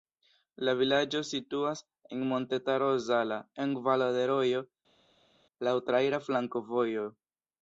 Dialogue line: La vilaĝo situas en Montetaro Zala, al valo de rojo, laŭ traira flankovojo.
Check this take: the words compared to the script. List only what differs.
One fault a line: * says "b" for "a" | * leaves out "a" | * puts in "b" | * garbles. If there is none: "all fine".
* says "en" for "al"